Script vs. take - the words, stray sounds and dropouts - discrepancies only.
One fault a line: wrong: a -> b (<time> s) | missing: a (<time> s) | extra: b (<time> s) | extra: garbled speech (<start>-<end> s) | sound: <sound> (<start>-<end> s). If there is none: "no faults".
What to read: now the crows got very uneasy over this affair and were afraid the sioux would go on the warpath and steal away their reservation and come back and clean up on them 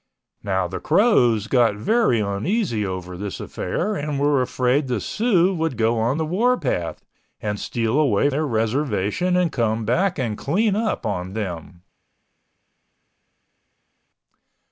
no faults